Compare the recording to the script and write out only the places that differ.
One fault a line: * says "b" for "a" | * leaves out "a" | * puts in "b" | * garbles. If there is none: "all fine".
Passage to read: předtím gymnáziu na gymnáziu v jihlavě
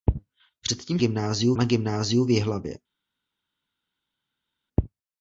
all fine